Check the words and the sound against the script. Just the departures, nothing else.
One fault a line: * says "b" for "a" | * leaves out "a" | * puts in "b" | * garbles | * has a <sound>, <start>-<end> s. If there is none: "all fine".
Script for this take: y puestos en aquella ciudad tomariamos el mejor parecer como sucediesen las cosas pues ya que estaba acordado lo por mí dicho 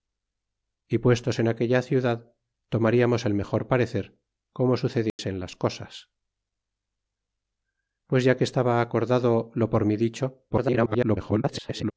* has a dropout, 5.1-5.2 s
* garbles